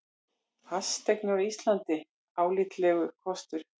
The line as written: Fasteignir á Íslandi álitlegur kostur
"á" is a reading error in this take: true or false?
false